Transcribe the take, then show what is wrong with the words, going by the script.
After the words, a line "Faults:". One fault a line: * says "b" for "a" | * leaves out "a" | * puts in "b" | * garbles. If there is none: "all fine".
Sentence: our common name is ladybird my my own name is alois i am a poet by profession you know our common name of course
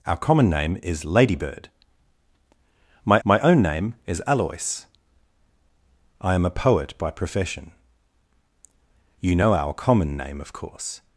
our common name is ladybird my my own name is alois i am a poet by profession you know our common name of course
Faults:
all fine